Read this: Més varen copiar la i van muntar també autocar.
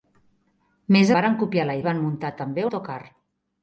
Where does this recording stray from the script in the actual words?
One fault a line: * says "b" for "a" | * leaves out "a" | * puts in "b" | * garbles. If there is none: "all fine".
all fine